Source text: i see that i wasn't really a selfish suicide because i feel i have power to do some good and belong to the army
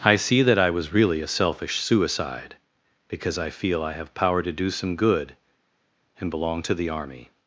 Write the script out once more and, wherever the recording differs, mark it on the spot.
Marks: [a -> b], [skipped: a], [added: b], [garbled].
i see that i [wasn't -> was] really a selfish suicide because i feel i have power to do some good and belong to the army